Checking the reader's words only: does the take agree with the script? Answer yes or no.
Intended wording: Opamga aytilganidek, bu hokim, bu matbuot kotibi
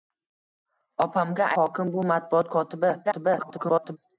no